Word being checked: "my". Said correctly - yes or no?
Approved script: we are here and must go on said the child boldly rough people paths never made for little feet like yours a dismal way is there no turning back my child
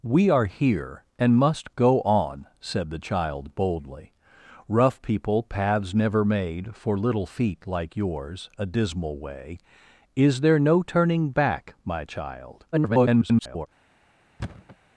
yes